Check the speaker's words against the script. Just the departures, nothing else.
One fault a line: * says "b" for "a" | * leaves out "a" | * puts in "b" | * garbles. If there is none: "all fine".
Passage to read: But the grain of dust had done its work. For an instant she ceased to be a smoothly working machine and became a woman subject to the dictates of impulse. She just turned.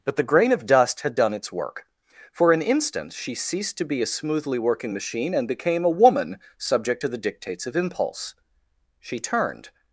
* leaves out "just"